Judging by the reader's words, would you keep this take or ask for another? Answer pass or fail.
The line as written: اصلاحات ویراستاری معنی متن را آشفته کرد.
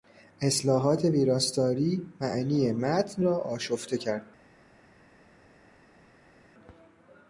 pass